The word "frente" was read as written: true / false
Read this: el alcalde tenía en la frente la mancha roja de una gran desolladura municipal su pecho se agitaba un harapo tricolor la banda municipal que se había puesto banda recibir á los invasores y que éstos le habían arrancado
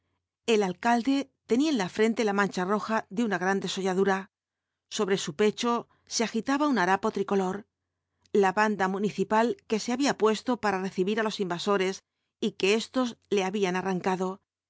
true